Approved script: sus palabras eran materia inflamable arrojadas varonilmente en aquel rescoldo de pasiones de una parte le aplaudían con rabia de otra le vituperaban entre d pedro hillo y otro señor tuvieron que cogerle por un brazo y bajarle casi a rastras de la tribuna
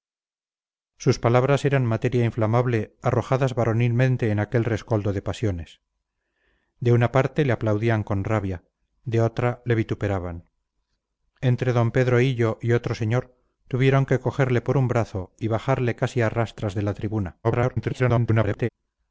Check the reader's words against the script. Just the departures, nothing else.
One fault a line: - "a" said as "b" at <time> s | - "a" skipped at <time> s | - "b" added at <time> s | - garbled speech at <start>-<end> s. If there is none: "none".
- garbled speech at 17.4-18.7 s